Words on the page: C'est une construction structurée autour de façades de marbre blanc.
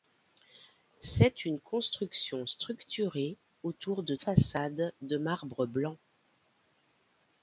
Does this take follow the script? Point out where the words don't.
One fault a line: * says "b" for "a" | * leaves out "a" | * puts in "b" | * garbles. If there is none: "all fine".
all fine